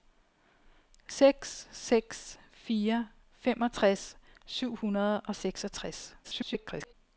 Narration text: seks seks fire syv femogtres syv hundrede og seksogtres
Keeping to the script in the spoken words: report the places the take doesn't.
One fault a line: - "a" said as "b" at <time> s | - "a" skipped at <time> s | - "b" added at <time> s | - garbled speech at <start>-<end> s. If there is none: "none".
- "syv" skipped at 3.1 s
- garbled speech at 6.2-6.9 s